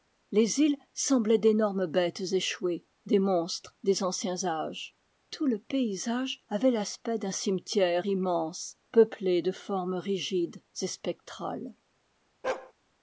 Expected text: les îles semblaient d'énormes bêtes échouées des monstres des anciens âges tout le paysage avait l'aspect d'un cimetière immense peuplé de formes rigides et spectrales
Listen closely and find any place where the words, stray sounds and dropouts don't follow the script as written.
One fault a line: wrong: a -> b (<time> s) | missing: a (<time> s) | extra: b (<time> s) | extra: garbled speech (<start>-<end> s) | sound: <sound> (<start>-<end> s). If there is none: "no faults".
sound: bark (12.4-12.7 s)